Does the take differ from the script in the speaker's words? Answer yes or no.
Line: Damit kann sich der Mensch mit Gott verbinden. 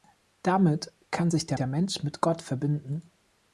yes